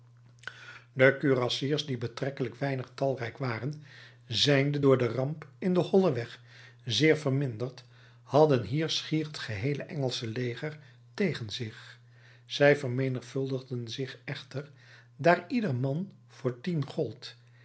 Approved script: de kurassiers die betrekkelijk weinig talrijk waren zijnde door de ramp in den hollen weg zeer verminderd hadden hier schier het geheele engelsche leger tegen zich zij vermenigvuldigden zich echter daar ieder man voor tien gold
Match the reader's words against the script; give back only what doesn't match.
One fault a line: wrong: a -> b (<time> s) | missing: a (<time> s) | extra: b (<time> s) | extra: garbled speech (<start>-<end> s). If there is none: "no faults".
no faults